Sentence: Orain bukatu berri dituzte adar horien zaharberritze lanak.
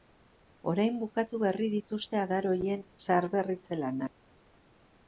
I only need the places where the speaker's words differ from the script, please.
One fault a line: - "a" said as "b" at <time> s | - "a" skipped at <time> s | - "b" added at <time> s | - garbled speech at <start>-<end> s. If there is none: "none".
none